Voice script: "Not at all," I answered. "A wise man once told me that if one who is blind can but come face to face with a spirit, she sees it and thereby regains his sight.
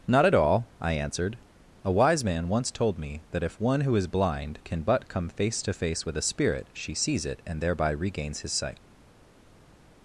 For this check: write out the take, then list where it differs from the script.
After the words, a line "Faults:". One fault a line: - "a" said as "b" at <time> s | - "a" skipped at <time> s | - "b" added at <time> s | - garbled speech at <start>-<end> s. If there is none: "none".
"Not at all," I answered. "A wise man once told me that if one who is blind can but come face to face with a spirit, she sees it and thereby regains his sight.
Faults:
none